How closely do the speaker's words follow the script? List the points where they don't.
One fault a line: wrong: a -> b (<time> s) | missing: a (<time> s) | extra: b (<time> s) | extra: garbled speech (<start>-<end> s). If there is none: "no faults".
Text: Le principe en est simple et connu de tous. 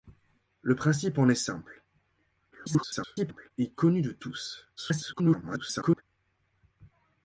extra: garbled speech (2.5-3.5 s)
extra: garbled speech (4.8-6.0 s)